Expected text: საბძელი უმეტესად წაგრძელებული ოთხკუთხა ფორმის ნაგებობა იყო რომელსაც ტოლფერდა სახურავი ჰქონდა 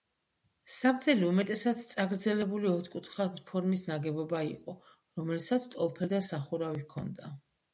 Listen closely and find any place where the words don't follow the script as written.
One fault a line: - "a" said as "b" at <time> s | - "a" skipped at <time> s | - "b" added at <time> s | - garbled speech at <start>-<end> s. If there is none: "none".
none